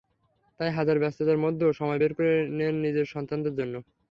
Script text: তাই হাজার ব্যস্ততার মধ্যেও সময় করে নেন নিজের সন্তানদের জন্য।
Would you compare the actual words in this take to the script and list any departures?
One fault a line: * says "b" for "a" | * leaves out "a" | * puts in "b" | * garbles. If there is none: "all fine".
* puts in "বের"